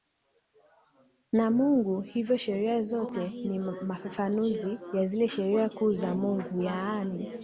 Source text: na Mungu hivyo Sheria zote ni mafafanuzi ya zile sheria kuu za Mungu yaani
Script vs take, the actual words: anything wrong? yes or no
no